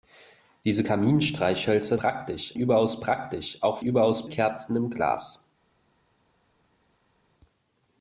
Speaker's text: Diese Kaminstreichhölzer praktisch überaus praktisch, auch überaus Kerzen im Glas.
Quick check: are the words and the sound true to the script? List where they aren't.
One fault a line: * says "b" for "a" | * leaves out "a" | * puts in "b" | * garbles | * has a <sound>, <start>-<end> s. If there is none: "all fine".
all fine